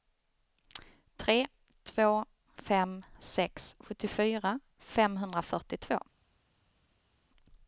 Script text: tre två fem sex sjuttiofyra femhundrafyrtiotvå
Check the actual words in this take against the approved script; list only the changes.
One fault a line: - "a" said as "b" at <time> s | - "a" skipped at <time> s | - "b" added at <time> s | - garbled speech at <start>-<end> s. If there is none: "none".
none